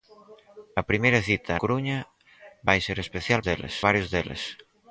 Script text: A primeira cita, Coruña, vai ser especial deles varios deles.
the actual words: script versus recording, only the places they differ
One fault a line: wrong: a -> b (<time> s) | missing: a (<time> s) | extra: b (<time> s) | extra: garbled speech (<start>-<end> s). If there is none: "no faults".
no faults